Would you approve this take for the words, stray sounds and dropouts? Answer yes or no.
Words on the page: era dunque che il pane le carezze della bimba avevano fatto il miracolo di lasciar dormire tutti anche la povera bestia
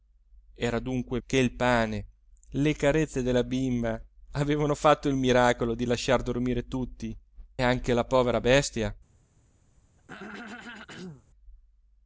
no